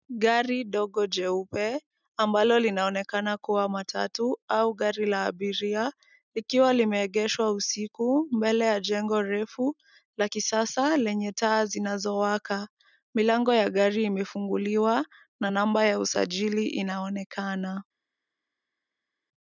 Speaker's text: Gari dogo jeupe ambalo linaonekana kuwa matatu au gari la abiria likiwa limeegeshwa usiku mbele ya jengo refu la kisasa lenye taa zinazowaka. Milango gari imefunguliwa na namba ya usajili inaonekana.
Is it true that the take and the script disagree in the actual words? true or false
true